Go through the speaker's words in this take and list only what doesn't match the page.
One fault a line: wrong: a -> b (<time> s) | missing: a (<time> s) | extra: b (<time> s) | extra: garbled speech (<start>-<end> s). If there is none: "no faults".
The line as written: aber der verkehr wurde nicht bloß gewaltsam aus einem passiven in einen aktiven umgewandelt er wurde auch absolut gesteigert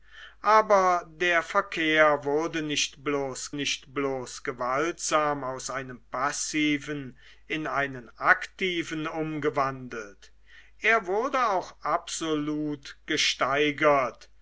extra: nicht bloß (3.5 s)